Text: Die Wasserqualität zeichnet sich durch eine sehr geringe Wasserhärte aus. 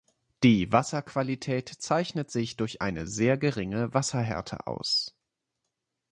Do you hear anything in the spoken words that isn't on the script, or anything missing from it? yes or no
no